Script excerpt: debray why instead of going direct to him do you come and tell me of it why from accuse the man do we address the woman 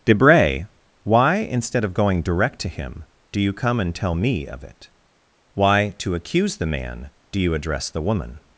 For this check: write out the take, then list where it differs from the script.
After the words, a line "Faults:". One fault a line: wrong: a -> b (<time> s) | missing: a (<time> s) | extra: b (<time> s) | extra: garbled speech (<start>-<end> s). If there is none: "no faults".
debray why instead of going direct to him do you come and tell me of it why to accuse the man do you address the woman
Faults:
wrong: from -> to (6.0 s)
wrong: we -> you (7.4 s)